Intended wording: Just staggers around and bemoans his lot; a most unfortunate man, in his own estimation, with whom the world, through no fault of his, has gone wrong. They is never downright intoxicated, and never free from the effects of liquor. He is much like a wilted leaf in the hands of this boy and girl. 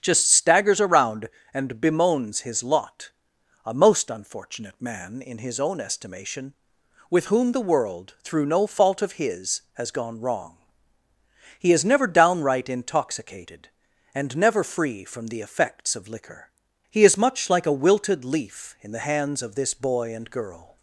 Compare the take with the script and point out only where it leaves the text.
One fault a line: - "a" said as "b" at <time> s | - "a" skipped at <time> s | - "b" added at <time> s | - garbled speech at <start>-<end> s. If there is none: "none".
- "They" said as "He" at 11.6 s